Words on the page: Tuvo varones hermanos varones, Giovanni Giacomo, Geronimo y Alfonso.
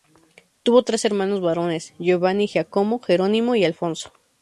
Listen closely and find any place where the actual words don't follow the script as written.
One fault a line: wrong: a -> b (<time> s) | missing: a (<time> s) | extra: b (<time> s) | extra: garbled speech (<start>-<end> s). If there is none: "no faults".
wrong: varones -> tres (0.8 s)